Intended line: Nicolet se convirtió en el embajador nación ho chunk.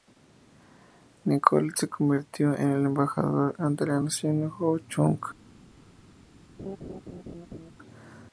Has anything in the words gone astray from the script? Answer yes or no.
yes